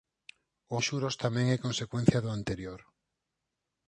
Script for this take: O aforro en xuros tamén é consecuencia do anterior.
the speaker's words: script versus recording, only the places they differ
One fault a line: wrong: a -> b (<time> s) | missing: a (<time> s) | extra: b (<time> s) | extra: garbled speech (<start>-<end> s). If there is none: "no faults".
missing: aforro (0.8 s)